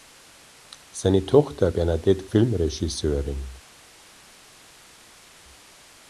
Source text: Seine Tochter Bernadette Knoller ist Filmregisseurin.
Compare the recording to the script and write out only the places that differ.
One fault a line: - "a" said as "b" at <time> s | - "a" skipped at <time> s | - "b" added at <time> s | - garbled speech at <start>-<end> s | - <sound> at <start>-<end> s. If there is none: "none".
- "Knoller ist" skipped at 2.3 s